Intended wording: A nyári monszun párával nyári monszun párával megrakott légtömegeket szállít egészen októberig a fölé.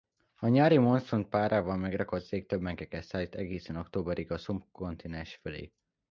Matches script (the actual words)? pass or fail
fail